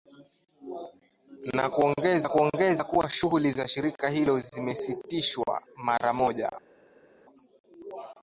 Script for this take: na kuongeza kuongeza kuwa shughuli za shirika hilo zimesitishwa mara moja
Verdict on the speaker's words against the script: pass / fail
pass